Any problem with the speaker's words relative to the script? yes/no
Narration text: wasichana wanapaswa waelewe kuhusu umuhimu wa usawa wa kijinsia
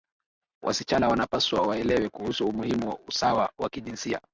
no